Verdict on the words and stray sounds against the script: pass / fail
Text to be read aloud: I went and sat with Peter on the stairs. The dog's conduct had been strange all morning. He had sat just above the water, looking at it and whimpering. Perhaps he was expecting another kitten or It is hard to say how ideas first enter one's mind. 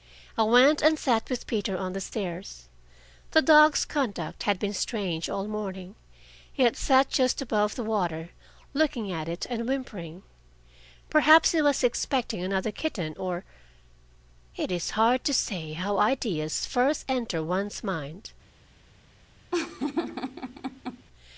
fail